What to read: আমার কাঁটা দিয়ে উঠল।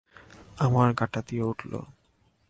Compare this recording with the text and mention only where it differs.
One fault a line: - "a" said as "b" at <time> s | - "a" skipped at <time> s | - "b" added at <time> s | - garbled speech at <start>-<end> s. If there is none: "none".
none